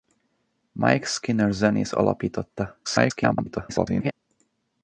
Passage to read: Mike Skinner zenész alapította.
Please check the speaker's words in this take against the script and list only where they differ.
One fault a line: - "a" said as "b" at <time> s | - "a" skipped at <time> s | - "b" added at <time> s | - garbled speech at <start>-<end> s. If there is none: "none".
- garbled speech at 2.8-4.1 s